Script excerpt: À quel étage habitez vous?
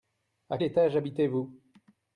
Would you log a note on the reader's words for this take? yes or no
yes